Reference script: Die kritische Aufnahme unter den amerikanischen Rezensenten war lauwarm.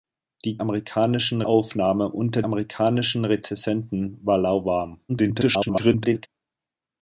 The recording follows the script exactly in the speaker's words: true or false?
false